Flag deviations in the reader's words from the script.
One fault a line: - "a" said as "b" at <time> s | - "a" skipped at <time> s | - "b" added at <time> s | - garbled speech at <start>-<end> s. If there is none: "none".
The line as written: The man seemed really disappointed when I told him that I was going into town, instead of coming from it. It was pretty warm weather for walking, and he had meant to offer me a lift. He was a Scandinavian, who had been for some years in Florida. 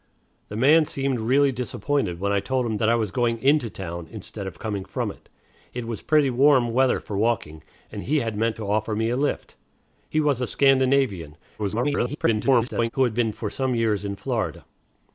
- garbled speech at 11.6-12.9 s